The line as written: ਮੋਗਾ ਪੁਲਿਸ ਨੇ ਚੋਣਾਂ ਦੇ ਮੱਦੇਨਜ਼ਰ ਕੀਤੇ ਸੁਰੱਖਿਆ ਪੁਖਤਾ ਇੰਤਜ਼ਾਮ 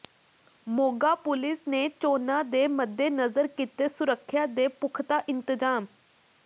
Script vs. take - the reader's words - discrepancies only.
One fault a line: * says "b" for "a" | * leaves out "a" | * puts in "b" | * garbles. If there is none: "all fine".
* puts in "ਦੇ"